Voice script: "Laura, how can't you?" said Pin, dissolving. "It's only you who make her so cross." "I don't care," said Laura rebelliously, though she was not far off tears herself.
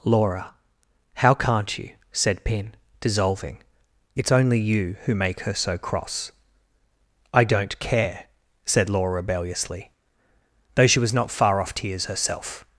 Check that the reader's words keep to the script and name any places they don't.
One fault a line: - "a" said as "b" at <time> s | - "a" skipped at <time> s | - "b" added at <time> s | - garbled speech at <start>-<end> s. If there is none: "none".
none